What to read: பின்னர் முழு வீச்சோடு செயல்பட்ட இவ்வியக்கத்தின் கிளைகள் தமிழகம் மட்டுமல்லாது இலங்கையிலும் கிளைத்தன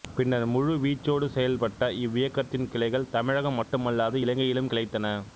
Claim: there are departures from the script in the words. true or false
false